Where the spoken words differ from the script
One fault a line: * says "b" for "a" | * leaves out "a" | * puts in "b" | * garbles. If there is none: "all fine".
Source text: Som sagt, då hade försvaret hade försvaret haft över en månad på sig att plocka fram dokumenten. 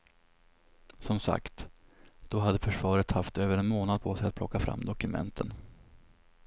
* leaves out "hade försvaret"